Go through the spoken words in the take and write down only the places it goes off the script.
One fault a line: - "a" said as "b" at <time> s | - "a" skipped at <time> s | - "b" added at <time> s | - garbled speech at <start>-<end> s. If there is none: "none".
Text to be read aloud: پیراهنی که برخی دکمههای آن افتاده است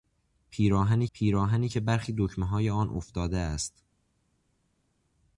- "پیراهنی" added at 1.1 s